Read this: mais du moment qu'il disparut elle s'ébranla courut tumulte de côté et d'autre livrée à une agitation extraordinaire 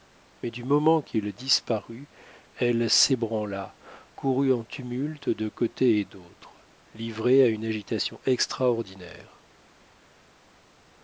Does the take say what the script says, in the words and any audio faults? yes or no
no